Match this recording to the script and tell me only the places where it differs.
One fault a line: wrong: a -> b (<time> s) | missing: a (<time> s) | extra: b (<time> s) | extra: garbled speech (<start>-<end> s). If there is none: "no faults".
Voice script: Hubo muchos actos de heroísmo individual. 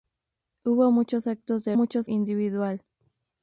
wrong: heroísmo -> muchos (1.7 s)